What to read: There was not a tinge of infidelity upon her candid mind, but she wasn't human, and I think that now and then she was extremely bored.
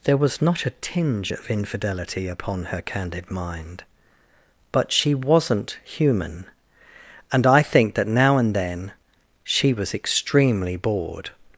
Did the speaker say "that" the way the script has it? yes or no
yes